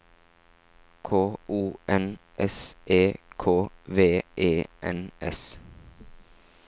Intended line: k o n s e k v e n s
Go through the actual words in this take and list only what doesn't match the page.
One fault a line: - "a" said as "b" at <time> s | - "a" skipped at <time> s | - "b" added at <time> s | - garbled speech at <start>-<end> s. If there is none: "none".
none